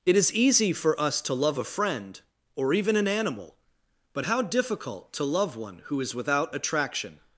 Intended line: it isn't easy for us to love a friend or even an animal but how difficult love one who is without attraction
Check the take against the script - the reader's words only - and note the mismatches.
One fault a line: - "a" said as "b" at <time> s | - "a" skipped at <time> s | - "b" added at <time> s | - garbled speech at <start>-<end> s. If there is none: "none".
- "isn't" said as "is" at 0.1 s
- "to" added at 5.1 s